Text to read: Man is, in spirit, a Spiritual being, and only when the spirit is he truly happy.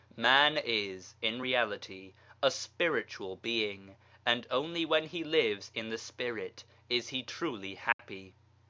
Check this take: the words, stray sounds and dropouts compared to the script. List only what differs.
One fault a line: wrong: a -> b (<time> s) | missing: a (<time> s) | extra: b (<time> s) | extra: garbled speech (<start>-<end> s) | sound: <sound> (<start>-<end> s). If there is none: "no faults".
wrong: spirit -> reality (1.4 s)
extra: he lives in (5.1 s)
sound: dropout (7.9-8.0 s)